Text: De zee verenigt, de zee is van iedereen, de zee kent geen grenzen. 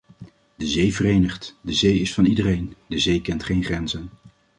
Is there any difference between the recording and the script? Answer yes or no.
no